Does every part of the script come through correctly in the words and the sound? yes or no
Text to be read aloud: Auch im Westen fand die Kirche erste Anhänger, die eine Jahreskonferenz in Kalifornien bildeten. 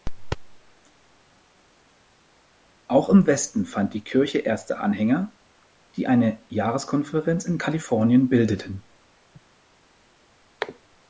yes